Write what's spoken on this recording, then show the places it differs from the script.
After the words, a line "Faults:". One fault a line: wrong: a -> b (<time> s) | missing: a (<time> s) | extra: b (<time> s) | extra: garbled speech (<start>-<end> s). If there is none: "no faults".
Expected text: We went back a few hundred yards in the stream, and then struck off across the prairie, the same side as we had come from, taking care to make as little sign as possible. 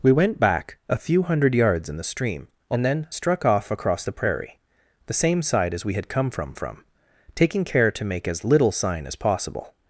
We went back a few hundred yards in the stream, and then struck off across the prairie, the same side as we had come from from, taking care to make as little sign as possible.
Faults:
extra: from (6.5 s)